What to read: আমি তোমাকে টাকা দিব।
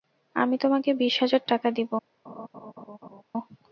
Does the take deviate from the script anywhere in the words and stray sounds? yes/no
yes